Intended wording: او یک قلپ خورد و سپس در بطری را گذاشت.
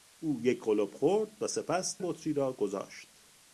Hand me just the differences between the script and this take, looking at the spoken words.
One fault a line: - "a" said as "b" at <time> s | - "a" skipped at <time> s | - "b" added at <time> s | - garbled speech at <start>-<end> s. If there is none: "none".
- "در" skipped at 2.0 s